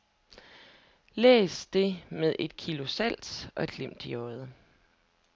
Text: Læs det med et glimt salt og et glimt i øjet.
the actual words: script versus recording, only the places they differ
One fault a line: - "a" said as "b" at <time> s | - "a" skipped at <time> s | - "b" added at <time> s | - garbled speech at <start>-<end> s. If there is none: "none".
- "glimt" said as "kilo" at 2.6 s